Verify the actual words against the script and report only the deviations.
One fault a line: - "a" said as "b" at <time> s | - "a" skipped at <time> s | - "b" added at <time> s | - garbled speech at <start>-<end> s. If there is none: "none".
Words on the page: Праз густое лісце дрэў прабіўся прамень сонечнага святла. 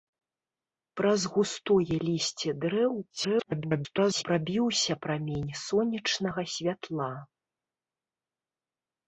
- garbled speech at 3.1-4.2 s